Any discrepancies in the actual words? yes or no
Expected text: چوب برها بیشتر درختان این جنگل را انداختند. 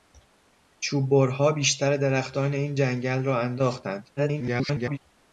yes